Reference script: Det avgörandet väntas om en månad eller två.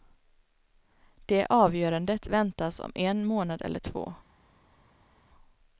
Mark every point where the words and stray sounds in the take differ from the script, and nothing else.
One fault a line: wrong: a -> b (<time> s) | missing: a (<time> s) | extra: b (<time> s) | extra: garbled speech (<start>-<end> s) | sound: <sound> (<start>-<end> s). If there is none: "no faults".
no faults